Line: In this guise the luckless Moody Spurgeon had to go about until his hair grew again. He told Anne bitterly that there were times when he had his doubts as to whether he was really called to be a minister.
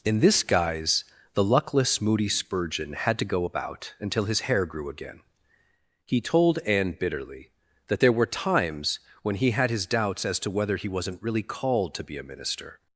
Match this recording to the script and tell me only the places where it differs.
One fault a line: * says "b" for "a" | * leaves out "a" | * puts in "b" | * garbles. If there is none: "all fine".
* says "wasn't" for "was"